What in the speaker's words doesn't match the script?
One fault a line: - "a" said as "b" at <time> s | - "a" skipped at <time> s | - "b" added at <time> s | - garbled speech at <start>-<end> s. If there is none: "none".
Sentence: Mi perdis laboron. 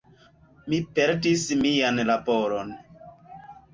- "mian" added at 1.6 s